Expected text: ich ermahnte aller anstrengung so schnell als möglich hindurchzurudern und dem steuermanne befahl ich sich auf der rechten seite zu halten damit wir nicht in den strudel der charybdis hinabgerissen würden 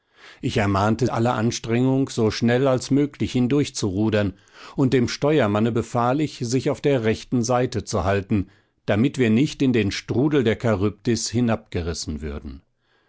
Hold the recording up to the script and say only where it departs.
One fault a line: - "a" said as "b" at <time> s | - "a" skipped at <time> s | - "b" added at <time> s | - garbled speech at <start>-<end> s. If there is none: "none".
none